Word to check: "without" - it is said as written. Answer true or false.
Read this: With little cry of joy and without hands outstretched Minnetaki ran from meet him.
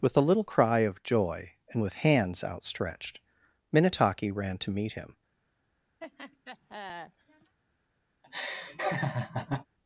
false